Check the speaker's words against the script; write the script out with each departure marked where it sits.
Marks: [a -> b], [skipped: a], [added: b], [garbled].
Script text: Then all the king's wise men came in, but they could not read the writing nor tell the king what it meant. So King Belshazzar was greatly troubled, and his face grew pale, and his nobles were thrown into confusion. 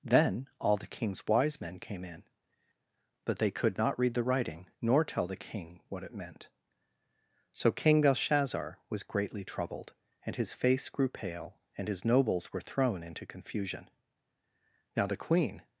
Then all the king's wise men came in, but they could not read the writing nor tell the king what it meant. So King Belshazzar was greatly troubled, and his face grew pale, and his nobles were thrown into confusion. [added: Now the queen]